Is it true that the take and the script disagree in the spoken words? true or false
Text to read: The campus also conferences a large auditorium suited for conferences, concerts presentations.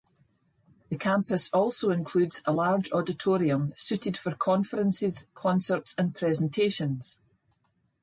true